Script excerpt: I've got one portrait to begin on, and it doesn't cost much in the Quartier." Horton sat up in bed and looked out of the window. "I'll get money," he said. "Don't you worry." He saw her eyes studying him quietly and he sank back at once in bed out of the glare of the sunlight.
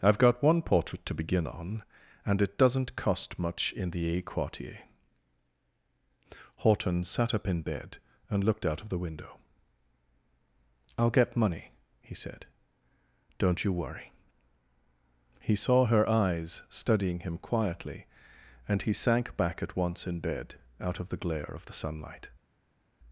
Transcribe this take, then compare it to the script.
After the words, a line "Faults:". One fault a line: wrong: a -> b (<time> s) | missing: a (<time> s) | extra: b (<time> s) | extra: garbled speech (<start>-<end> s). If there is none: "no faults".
I've got one portrait to begin on, and it doesn't cost much in the a Quartier." Horton sat up in bed and looked out of the window. "I'll get money," he said. "Don't you worry." He saw her eyes studying him quietly and he sank back at once in bed out of the glare of the sunlight.
Faults:
extra: a (4.2 s)